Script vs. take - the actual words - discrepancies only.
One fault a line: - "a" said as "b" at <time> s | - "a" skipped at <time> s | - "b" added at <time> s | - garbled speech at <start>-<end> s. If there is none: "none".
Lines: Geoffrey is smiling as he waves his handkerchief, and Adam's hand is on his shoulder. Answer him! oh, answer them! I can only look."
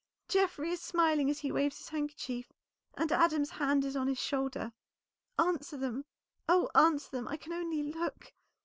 - "him" said as "them" at 5.8 s